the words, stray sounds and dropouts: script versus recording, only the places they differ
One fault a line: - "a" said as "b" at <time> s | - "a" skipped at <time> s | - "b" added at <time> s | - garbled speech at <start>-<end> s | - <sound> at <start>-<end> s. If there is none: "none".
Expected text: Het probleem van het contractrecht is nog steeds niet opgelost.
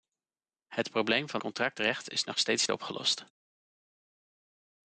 - "het" skipped at 1.4 s
- "niet" skipped at 2.7 s